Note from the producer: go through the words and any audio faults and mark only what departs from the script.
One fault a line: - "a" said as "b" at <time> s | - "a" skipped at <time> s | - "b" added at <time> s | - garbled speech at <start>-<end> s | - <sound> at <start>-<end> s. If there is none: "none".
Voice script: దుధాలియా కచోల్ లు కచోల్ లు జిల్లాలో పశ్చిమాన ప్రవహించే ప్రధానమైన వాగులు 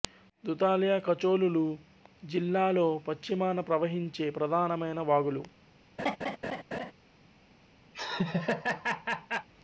- "కచోల్ లు" skipped at 1.6 s
- laugh at 6.0-6.9 s
- laugh at 7.9-9.5 s